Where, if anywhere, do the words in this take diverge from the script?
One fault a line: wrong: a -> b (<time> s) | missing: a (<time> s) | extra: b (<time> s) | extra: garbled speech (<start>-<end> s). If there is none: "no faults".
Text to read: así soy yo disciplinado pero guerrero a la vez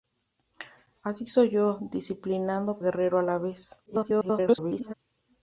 missing: pero (2.8 s)
extra: garbled speech (3.9-4.9 s)